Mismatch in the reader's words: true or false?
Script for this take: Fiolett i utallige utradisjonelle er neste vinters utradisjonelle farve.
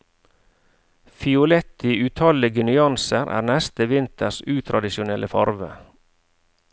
true